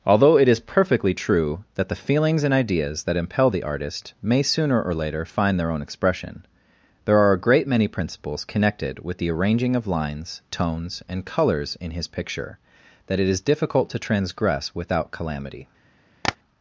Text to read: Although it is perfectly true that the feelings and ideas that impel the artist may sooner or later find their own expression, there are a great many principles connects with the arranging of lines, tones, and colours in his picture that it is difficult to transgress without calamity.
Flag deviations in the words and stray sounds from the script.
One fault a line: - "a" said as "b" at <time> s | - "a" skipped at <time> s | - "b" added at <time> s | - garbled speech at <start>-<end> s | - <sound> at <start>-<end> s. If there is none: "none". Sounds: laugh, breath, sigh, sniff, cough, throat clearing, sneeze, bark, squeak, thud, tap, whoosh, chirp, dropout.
- "connects" said as "connected" at 8.4 s
- tap at 16.2-16.4 s